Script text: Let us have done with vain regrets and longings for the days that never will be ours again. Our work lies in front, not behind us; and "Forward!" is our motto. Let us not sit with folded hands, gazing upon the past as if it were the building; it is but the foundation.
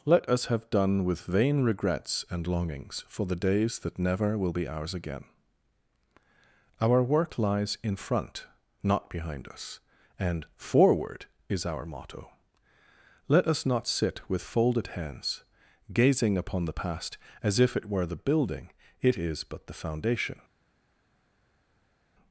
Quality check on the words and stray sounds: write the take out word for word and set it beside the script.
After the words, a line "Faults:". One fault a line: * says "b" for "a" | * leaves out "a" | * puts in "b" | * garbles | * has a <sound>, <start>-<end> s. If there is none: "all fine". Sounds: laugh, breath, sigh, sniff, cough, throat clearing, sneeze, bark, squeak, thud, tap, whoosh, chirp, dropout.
Let us have done with vain regrets and longings for the days that never will be ours again. Our work lies in front, not behind us; and "Forward!" is our motto. Let us not sit with folded hands, gazing upon the past as if it were the building; it is but the foundation.
Faults:
all fine